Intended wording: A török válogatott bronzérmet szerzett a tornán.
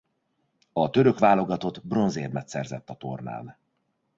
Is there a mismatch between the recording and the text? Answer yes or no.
no